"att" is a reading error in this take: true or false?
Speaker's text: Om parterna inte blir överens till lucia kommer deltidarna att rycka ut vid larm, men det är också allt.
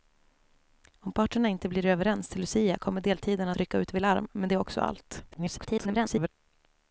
true